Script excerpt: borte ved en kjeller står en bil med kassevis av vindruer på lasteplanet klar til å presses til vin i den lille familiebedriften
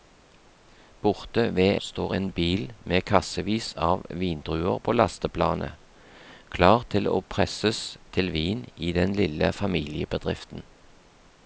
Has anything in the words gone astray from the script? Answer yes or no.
yes